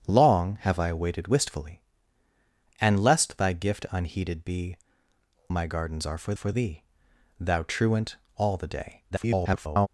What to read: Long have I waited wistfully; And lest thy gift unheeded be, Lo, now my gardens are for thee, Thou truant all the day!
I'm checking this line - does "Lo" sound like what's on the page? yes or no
no